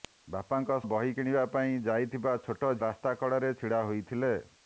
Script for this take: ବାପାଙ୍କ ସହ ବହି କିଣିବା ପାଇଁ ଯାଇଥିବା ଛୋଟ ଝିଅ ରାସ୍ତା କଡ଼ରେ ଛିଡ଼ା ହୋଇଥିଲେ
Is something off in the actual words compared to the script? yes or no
yes